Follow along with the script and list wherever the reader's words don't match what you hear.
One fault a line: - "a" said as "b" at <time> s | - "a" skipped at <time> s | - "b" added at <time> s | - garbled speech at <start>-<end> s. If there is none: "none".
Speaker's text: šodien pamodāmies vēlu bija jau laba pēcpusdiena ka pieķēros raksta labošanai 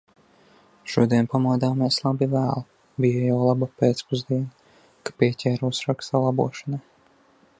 - "labi" added at 2.0 s